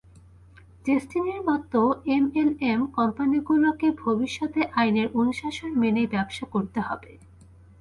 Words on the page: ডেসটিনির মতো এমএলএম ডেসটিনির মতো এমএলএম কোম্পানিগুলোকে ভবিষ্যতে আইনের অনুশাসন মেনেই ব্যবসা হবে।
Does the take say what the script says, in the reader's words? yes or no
no